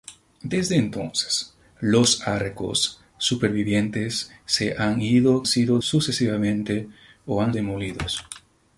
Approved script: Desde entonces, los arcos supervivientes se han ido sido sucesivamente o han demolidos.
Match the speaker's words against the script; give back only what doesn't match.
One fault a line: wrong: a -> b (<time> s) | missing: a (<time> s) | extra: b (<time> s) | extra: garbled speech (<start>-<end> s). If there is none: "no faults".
no faults